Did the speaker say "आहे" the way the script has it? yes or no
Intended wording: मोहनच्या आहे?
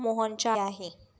yes